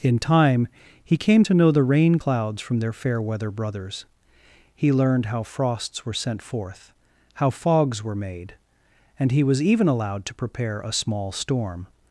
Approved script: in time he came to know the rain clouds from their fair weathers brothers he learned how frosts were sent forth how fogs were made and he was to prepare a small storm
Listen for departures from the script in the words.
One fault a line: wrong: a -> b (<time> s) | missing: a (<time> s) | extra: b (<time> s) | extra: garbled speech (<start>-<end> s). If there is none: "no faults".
wrong: weathers -> weather (3.2 s)
extra: even allowed (9.6 s)